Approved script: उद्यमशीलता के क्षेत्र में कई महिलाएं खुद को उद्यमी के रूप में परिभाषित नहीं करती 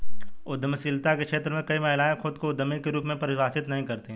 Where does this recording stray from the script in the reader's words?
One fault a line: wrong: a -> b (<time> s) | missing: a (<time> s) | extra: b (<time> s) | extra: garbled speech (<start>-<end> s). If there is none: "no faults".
no faults